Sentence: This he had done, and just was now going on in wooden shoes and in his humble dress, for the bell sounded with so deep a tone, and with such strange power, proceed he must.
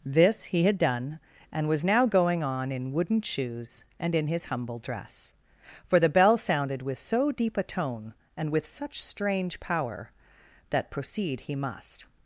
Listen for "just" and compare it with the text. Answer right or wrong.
wrong